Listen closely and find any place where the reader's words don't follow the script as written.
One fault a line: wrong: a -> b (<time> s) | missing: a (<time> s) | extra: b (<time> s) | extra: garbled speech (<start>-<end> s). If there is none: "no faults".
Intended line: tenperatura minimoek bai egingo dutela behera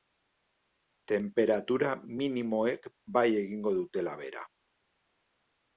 no faults